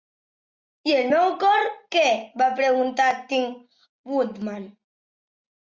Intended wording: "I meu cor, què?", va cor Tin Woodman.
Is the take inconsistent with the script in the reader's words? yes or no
yes